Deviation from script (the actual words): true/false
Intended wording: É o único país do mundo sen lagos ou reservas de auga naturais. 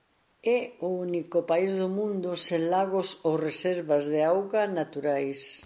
false